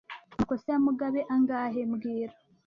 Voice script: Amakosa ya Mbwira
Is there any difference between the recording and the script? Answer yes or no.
yes